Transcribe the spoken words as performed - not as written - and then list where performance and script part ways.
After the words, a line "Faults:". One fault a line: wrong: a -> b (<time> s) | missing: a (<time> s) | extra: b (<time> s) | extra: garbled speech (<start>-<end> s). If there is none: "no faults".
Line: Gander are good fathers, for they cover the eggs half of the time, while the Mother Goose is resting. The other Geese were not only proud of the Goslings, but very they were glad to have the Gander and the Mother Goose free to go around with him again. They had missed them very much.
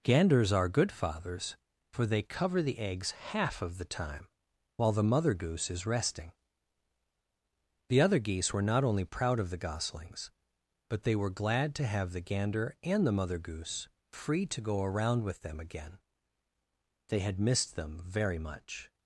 Ganders are good fathers, for they cover the eggs half of the time, while the Mother Goose is resting. The other Geese were not only proud of the Goslings, but they were glad to have the Gander and the Mother Goose free to go around with them again. They had missed them very much.
Faults:
wrong: Gander -> Ganders (0.0 s)
missing: very (11.0 s)
wrong: him -> them (15.4 s)